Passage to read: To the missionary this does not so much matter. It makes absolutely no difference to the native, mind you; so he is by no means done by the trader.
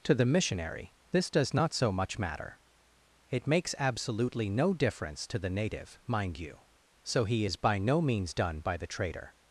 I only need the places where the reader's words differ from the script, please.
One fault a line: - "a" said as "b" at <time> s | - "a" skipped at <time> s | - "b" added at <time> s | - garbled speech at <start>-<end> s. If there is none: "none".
none